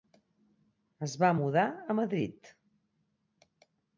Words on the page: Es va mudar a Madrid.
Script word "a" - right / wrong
right